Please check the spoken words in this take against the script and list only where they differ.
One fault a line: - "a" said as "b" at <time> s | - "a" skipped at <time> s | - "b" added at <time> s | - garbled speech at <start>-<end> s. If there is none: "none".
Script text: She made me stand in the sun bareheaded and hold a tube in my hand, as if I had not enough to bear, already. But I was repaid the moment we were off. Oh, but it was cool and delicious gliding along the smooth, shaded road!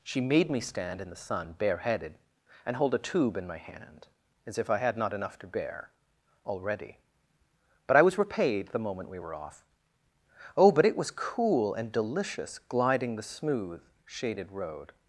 - "along" skipped at 13.2 s